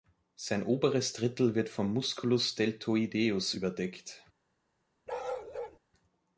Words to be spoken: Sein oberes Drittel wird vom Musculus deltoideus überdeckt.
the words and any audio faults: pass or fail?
fail